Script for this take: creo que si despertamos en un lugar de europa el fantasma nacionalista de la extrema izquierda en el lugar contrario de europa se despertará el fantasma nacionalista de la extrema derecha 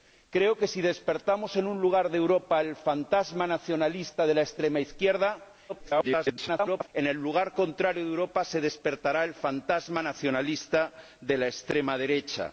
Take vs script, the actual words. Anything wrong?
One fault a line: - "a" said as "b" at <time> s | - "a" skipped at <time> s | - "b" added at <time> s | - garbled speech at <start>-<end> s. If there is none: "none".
- garbled speech at 5.7-6.9 s